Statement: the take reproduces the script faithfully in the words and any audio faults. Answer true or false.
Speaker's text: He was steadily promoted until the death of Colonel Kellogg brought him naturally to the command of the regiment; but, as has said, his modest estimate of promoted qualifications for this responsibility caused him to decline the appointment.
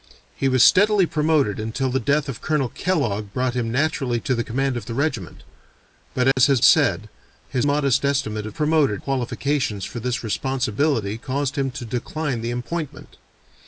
false